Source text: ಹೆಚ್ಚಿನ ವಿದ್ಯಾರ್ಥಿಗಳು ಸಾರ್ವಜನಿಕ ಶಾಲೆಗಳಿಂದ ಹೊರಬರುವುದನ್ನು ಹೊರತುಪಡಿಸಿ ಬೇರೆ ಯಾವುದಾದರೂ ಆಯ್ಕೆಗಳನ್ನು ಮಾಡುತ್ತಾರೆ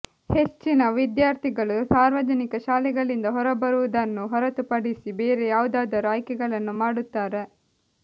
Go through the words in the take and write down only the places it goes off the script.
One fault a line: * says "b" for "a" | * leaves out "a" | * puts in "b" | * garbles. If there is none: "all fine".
all fine